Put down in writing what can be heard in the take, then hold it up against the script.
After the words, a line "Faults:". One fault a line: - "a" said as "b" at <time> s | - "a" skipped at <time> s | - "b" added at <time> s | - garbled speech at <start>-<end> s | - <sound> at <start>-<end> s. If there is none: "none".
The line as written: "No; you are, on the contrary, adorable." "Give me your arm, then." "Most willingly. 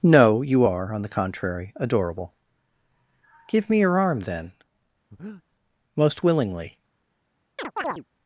"No; you are, on the contrary, adorable." "Give me your arm, then." "Most willingly.
Faults:
- breath at 5.1-5.4 s
- chirp at 7.6-8.0 s